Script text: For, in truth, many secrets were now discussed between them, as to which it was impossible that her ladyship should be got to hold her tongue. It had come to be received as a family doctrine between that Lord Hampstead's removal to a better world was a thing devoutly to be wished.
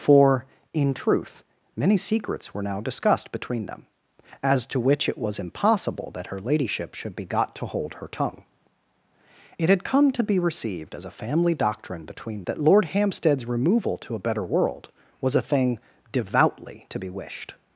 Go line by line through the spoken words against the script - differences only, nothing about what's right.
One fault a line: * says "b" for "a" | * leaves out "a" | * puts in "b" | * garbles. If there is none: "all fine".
all fine